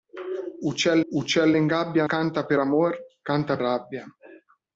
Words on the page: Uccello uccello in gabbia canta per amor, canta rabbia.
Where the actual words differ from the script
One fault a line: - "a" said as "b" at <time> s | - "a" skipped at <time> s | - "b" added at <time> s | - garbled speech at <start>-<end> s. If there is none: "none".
none